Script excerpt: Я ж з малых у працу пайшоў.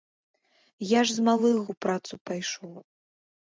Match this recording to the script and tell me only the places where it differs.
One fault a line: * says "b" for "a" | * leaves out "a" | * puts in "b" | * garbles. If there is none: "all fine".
all fine